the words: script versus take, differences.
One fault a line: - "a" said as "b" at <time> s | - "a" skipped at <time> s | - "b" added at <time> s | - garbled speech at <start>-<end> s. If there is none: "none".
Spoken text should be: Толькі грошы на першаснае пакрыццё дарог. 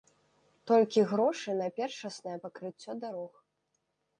none